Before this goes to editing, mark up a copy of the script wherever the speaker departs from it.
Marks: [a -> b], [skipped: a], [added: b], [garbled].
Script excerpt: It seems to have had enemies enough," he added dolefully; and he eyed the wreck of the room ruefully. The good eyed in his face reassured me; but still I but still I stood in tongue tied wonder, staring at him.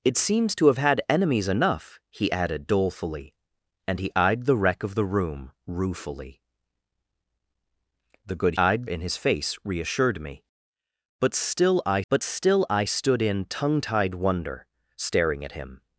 It seems to have had enemies enough," he added dolefully; and he eyed the wreck of the room ruefully. The good eyed in his face reassured me; but still I but still I stood in tongue tied wonder, staring at him.